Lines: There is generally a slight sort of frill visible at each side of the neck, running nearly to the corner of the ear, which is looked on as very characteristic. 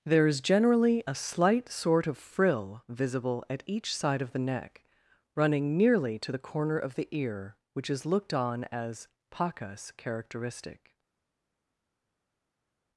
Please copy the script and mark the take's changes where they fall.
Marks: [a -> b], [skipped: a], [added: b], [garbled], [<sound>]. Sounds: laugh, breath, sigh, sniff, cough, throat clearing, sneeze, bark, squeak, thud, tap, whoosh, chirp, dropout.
There is generally a slight sort of frill visible at each side of the neck, running nearly to the corner of the ear, which is looked on as [very -> pacas] characteristic.